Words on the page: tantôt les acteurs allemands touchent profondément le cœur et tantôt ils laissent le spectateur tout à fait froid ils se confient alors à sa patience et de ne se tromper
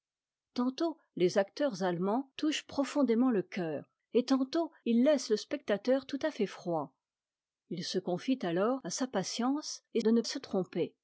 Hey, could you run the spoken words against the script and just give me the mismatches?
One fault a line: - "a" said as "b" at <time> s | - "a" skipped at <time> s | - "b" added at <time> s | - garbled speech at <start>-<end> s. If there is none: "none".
none